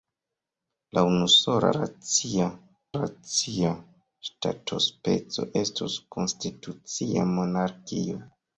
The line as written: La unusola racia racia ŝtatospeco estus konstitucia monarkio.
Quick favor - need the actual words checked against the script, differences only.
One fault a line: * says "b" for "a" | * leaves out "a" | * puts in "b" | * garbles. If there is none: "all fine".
all fine